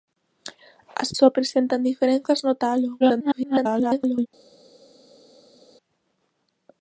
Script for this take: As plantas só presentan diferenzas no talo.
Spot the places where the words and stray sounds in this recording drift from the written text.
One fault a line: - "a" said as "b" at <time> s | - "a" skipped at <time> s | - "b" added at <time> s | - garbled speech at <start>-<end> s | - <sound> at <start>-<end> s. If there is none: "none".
- "plantas" skipped at 1.1 s
- garbled speech at 3.0-4.3 s